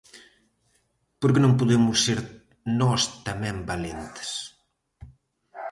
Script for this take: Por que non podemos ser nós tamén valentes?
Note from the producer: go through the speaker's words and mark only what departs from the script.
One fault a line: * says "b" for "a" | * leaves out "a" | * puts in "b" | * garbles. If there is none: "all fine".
all fine